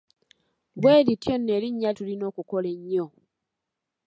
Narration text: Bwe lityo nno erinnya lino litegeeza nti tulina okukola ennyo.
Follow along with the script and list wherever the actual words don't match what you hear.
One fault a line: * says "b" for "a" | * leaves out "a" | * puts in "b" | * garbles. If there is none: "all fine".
* leaves out "lino litegeeza nti"